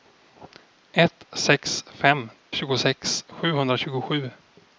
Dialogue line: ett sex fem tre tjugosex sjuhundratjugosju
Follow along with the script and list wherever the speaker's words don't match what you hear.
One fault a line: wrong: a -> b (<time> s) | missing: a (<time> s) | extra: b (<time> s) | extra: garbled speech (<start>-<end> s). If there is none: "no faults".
missing: tre (2.3 s)